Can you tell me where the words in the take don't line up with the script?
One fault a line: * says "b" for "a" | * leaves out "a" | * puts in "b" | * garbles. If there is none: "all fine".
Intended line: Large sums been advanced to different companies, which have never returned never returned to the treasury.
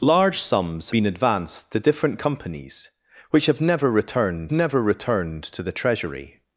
all fine